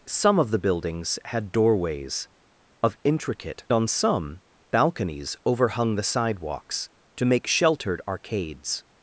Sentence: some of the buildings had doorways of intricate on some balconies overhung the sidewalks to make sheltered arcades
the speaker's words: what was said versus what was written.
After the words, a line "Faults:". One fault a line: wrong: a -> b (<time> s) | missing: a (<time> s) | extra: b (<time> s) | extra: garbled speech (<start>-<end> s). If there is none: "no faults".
some of the buildings had doorways of intricate on some balconies overhung the sidewalks to make sheltered arcades
Faults:
no faults